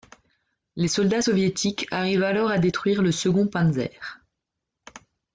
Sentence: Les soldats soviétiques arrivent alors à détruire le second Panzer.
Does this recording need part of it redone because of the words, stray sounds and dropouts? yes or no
no